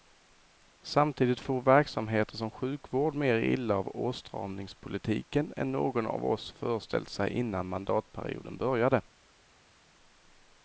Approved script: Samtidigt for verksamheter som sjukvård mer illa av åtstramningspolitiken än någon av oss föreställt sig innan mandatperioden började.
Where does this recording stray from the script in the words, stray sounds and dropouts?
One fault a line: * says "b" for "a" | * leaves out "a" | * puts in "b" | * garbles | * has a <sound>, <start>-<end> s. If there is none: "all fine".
all fine